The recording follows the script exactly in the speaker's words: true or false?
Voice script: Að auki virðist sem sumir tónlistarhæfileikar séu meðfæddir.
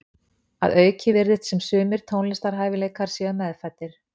true